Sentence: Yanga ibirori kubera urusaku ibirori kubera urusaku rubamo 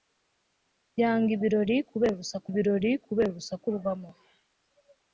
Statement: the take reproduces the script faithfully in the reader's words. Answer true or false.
true